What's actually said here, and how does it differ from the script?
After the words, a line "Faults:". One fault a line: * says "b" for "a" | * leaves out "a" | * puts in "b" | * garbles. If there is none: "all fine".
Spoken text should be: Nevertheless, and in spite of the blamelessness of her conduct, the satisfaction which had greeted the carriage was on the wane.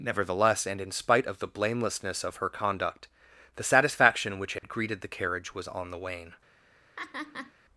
Nevertheless, and in spite of the blamelessness of her conduct, the satisfaction which had greeted the carriage was on the wane.
Faults:
all fine